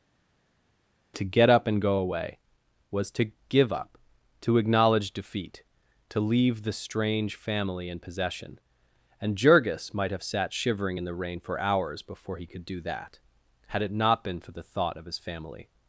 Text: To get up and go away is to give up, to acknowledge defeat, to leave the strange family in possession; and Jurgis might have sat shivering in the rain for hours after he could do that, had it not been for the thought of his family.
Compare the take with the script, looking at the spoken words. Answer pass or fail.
fail